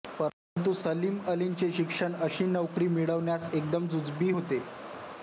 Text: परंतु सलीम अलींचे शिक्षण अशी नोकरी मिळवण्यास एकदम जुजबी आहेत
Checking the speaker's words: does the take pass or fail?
fail